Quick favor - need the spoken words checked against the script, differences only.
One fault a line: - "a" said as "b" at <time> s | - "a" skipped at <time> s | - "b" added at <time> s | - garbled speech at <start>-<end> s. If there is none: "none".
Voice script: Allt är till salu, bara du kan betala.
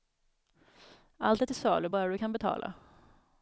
none